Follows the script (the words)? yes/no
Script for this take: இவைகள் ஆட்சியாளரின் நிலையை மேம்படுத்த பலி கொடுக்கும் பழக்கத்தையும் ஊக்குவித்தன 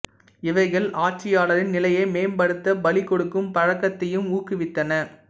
yes